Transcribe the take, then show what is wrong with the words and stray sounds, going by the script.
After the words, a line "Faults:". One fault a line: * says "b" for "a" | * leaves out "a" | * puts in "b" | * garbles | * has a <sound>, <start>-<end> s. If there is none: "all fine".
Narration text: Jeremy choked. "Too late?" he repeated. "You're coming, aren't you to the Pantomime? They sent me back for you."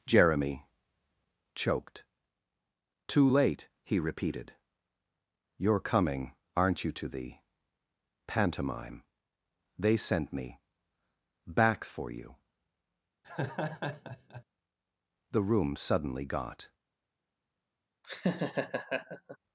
Jeremy choked. "Too late?" he repeated. "You're coming, aren't you to the Pantomime? They sent me back for you." The room suddenly got
Faults:
* has a laugh, 13.2-14.4 s
* puts in "The room suddenly got"
* has a laugh, 18.0-19.4 s